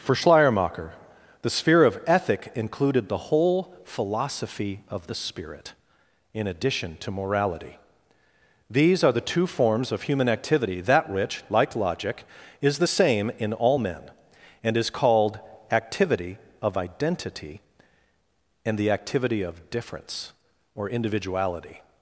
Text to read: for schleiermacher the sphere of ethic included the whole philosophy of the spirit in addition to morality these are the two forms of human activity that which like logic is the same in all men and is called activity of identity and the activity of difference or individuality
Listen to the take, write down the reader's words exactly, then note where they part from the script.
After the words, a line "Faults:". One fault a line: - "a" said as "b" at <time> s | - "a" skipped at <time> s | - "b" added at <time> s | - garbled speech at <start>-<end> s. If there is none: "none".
for schleiermacher the sphere of ethic included the whole philosophy of the spirit in addition to morality these are the two forms of human activity that which like logic is the same in all men and is called activity of identity and the activity of difference or individuality
Faults:
none